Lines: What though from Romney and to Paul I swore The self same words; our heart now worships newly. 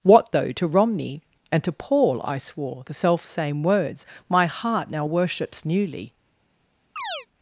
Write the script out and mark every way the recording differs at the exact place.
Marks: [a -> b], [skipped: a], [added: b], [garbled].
What though [from -> to] Romney and to Paul I swore The self same words; [our -> my] heart now worships newly.